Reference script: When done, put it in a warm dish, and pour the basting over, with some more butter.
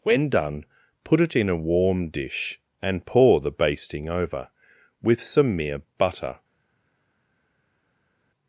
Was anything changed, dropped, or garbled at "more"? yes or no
yes